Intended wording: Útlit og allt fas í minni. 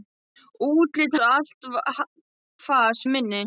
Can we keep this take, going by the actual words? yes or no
yes